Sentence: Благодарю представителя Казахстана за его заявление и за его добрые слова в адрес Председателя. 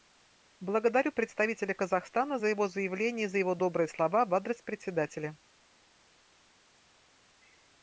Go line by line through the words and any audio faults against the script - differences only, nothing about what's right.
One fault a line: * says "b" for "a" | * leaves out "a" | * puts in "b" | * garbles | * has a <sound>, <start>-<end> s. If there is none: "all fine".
all fine